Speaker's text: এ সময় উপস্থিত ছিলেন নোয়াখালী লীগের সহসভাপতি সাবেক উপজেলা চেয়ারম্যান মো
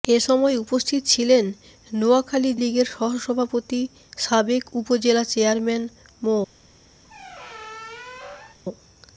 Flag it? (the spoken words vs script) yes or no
no